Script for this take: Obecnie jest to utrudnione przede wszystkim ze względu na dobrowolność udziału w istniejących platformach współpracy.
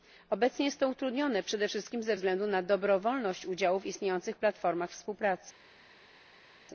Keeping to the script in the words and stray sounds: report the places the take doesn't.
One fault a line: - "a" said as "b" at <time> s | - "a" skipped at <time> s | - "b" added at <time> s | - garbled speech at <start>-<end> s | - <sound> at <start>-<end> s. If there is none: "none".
none